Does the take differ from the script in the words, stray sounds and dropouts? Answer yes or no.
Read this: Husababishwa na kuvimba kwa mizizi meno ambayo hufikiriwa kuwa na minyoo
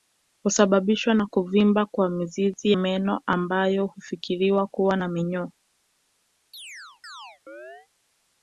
yes